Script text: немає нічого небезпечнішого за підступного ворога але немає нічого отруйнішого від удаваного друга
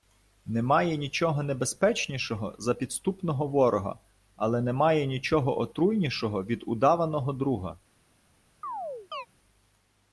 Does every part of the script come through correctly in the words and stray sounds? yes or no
no